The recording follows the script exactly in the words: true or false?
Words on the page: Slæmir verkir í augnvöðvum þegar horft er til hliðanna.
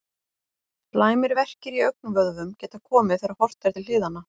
false